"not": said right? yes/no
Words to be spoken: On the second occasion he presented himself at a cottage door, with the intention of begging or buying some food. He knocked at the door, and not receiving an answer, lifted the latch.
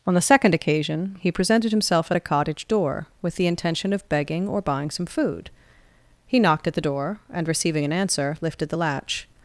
no